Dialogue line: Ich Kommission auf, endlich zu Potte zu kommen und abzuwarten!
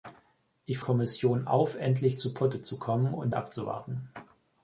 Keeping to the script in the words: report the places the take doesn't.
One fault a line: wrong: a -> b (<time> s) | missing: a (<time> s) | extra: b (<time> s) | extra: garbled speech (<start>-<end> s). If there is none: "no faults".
no faults